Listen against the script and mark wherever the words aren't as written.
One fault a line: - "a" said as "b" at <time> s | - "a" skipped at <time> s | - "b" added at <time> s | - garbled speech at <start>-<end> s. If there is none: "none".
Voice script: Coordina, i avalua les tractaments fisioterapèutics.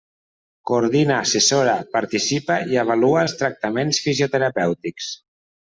- "assessora participa" added at 1.2 s
- "les" said as "els" at 3.2 s